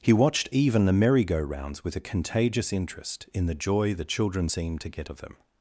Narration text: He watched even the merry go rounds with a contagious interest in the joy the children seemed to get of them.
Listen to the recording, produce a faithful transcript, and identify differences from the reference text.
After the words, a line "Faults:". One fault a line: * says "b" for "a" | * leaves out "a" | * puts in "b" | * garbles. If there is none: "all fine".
He watched even the merry go rounds with a contagious interest in the joy the children seemed to get of them.
Faults:
all fine